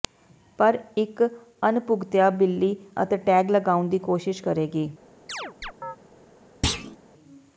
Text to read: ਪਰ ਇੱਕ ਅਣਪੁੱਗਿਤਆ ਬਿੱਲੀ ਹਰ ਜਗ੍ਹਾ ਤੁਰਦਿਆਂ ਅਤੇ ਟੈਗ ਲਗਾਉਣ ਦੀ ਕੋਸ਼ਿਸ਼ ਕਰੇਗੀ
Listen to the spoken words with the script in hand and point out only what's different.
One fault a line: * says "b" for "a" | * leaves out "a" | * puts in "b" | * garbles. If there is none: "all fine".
* leaves out "ਹਰ ਜਗ੍ਹਾ ਤੁਰਦਿਆਂ"